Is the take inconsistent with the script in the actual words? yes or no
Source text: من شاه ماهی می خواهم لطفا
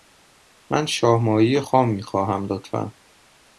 yes